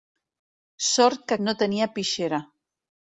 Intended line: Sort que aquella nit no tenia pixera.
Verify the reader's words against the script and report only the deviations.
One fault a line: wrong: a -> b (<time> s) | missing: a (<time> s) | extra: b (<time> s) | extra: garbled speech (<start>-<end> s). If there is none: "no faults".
missing: aquella nit (1.4 s)